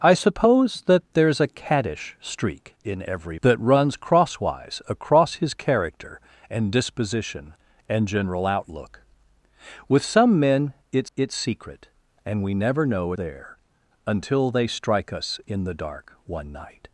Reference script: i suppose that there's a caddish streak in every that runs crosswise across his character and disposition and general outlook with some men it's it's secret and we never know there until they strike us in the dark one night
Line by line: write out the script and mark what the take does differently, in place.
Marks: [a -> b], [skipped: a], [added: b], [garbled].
i suppose that there's a caddish streak in every that runs crosswise across his character and disposition and general outlook with some men it's it's secret and we never know there until they strike us in the dark one night